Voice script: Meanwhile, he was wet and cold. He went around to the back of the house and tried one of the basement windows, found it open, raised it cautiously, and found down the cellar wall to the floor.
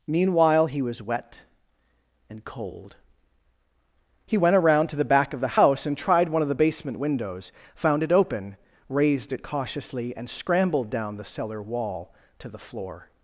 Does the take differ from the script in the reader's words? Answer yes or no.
yes